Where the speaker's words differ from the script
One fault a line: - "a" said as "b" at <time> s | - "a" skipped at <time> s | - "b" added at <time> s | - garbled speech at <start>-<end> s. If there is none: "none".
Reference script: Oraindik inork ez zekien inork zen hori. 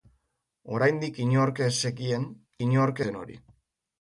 none